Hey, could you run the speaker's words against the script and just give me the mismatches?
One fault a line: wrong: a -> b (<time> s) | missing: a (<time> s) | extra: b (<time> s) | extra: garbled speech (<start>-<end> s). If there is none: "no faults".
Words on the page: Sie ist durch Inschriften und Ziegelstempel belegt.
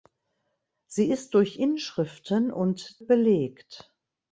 missing: Ziegelstempel (3.0 s)